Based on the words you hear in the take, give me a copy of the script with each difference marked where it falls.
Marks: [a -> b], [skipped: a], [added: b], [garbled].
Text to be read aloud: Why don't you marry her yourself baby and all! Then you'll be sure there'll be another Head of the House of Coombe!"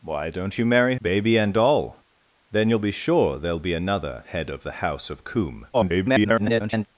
Why don't you marry [skipped: her yourself] baby and all! Then you'll be sure there'll be another Head of the House of Coombe!" [garbled]